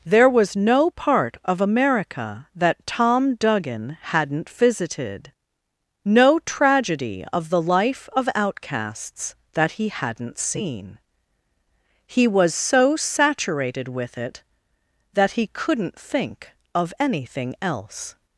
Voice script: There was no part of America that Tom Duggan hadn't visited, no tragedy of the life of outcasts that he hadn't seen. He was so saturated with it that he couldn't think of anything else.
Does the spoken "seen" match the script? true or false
true